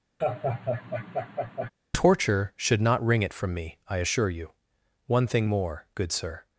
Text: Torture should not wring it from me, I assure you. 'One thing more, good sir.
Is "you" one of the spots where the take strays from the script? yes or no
no